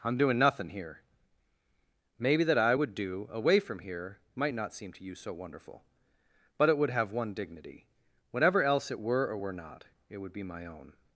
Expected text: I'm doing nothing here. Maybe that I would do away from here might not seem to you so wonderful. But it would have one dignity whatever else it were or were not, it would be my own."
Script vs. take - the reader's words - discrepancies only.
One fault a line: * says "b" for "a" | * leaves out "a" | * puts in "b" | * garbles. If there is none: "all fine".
all fine